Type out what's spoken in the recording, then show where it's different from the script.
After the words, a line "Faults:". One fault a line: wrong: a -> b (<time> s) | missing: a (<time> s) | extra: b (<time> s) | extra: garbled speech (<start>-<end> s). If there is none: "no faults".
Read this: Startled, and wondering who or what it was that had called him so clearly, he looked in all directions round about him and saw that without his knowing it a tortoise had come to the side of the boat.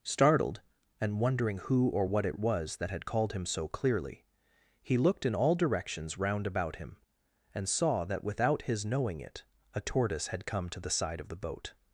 Startled, and wondering who or what it was that had called him so clearly, he looked in all directions round about him and saw that without his knowing it a tortoise had come to the side of the boat.
Faults:
no faults